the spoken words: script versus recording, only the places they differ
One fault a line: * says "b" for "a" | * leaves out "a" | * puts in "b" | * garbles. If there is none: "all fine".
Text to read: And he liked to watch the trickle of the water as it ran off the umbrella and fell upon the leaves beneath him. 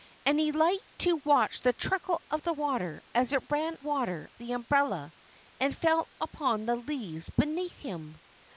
* says "water" for "off"